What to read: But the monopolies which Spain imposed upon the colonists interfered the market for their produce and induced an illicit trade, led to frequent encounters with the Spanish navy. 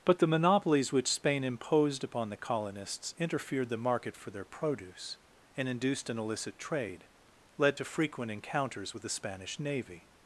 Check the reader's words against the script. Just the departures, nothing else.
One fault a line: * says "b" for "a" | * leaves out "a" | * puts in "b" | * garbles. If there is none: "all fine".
all fine